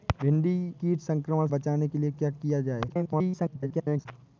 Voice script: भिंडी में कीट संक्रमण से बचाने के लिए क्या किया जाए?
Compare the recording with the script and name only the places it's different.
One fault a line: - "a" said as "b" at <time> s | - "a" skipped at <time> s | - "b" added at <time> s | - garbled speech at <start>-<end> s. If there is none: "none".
- "में" skipped at 0.7 s
- "से" skipped at 1.5 s
- garbled speech at 2.9-4.1 s